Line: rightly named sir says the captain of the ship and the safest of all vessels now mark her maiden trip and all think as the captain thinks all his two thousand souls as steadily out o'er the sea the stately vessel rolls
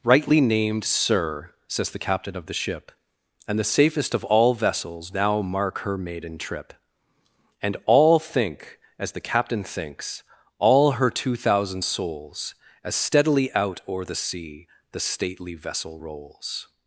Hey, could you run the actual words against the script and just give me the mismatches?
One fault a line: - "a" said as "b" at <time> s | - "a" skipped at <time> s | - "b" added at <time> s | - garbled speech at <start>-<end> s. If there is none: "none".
- "his" said as "her" at 10.9 s